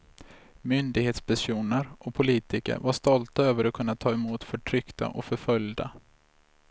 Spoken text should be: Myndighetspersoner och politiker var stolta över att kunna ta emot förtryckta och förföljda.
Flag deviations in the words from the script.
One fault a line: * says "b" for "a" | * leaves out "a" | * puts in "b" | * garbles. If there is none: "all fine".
all fine